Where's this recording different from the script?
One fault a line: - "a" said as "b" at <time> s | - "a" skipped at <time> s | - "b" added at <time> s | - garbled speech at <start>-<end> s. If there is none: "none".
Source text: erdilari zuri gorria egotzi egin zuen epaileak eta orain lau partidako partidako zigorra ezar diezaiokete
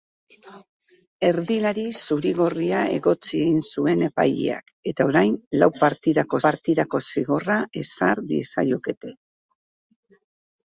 none